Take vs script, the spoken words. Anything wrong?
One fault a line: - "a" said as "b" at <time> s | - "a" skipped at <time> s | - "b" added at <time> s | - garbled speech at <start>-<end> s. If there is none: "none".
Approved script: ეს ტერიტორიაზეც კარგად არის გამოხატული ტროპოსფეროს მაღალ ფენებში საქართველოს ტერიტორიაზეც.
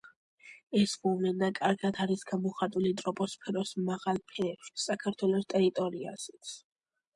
- "ტერიტორიაზეც" said as "მოვლენა" at 1.0 s